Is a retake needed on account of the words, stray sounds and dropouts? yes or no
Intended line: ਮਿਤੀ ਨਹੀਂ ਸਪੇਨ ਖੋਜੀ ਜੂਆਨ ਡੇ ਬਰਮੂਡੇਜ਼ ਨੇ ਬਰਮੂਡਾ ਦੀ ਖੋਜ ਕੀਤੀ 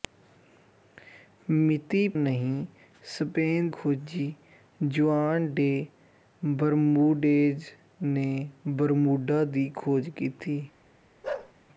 yes